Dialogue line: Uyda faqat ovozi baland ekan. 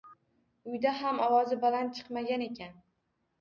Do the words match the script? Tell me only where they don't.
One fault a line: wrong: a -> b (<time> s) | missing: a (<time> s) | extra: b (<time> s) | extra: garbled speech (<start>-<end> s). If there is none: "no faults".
wrong: faqat -> ham (1.0 s)
extra: chiqmagan (2.0 s)